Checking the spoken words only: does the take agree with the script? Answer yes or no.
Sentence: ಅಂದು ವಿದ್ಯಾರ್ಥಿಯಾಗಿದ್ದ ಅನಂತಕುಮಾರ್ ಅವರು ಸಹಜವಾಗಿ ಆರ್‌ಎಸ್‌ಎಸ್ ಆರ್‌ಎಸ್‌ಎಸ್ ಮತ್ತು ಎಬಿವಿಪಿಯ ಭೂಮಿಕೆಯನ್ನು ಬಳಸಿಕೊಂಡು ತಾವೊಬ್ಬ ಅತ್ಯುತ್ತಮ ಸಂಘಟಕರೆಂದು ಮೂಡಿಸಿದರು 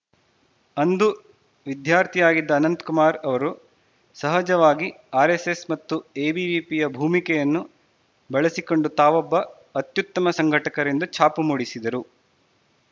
no